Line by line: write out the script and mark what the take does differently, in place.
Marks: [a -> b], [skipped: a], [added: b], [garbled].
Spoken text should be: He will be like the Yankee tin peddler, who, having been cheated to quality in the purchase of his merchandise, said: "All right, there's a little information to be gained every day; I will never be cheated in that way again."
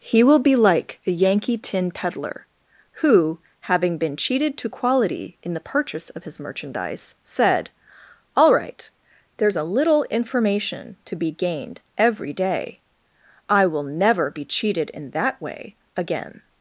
He will be like the Yankee tin peddler, who, having been cheated to quality in the purchase of his merchandise, said: "All right, there's a little information to be gained every day; I will never be cheated in that way again."